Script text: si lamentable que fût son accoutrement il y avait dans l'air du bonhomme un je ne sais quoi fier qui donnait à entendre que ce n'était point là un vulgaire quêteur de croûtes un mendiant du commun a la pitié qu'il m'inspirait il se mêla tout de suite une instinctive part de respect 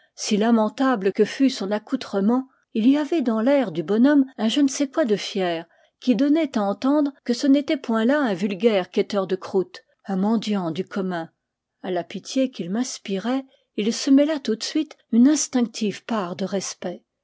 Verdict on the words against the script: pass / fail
fail